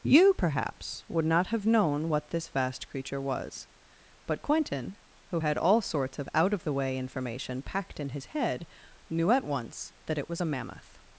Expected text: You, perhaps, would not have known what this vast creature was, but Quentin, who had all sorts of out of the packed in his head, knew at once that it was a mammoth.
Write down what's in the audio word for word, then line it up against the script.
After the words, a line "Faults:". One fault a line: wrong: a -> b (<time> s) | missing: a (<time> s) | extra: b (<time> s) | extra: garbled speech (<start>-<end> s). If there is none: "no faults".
You, perhaps, would not have known what this vast creature was, but Quentin, who had all sorts of out of the way information packed in his head, knew at once that it was a mammoth.
Faults:
extra: way information (6.7 s)